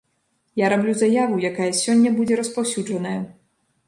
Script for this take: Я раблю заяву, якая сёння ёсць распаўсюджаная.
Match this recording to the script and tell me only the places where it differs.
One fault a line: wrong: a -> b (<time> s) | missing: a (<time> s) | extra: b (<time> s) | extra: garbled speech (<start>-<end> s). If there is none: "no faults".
wrong: ёсць -> будзе (2.2 s)